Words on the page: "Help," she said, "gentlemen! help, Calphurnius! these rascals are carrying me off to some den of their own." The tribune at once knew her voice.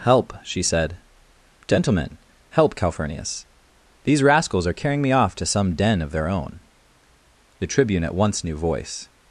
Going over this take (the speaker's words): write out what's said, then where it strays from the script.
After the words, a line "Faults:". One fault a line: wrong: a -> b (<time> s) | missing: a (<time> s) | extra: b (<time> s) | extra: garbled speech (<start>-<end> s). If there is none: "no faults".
"Help," she said, "gentlemen! help, Calphurnius! these rascals are carrying me off to some den of their own." The tribune at once knew voice.
Faults:
missing: her (8.6 s)